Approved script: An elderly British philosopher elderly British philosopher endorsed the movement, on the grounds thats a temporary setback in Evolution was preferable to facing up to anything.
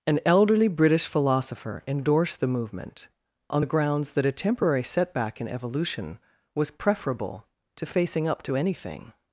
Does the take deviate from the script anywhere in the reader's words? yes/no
yes